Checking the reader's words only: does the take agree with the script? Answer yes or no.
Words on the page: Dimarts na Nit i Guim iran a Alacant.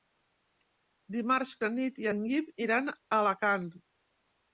no